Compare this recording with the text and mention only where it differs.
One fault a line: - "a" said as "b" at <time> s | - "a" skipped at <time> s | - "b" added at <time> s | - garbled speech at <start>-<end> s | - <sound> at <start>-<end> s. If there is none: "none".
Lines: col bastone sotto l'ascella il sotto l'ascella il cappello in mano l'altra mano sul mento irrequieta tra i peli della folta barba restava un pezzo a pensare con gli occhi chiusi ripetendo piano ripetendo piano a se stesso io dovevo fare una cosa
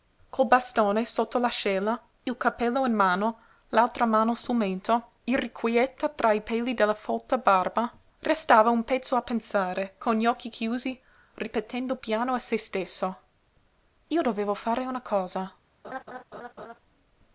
- "sotto l'ascella il" skipped at 2.4 s
- "ripetendo piano" skipped at 12.3 s
- laugh at 15.8-16.8 s